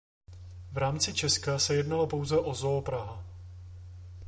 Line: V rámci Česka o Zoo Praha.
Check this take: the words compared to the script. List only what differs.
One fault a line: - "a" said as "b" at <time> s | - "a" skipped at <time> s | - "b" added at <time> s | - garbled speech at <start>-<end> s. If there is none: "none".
- "se jednalo pouze" added at 1.6 s